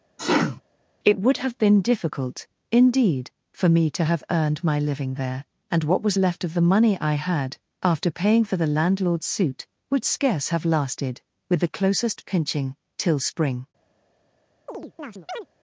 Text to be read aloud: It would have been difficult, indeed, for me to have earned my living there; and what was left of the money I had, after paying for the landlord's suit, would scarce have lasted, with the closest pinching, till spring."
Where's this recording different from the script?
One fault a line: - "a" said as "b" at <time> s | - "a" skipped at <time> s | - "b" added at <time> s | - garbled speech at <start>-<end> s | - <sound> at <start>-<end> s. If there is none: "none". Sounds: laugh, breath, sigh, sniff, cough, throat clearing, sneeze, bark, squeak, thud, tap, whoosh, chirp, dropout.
- sneeze at 0.2-0.6 s
- chirp at 14.7-15.5 s